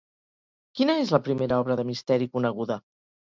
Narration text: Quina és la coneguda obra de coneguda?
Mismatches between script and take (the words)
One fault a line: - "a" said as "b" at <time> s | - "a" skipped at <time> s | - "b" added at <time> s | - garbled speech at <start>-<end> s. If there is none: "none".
- "coneguda" said as "primera" at 1.3 s
- "misteri" added at 1.9 s